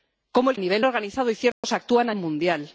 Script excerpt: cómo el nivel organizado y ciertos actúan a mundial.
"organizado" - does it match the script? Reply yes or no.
yes